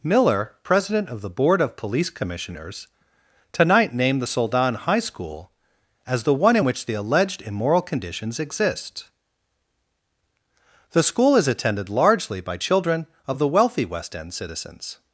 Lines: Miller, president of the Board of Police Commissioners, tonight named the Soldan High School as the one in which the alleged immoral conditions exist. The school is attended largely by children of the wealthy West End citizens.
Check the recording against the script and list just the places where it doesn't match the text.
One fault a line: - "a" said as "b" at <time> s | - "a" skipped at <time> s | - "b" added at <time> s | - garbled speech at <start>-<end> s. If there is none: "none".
none